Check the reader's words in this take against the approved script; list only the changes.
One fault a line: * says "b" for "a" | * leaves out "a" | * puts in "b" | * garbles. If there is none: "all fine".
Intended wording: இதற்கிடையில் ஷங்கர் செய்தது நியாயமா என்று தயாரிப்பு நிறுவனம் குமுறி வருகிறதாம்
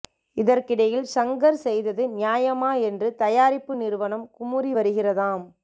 all fine